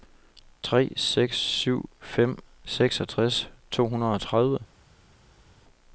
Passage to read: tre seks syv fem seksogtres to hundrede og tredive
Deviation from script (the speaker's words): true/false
false